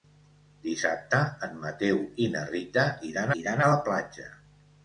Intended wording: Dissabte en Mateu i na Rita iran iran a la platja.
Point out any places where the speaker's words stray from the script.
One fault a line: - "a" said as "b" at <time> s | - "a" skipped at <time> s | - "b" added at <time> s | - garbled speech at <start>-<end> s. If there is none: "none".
none